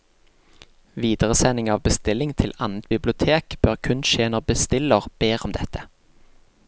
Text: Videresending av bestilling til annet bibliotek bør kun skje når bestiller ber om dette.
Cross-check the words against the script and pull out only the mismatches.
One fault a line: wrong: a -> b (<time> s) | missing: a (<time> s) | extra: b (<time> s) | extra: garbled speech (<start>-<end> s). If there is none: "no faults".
no faults